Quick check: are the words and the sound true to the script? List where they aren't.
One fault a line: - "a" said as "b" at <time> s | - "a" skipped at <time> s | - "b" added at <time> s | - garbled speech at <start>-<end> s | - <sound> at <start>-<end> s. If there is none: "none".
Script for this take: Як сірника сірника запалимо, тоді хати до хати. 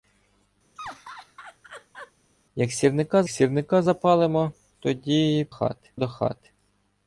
- laugh at 0.8-2.1 s